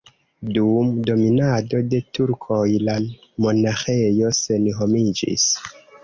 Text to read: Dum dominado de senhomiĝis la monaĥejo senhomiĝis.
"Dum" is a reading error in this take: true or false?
false